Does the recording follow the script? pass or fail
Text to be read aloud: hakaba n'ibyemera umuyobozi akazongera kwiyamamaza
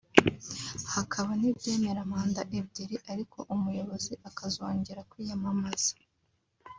fail